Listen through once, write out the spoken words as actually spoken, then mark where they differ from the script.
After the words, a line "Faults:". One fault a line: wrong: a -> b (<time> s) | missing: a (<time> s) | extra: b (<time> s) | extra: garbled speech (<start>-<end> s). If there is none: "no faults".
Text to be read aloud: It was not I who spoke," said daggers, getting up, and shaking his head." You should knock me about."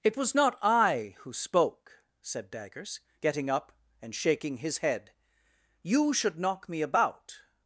It was not I who spoke," said daggers, getting up, and shaking his head." You should knock me about."
Faults:
no faults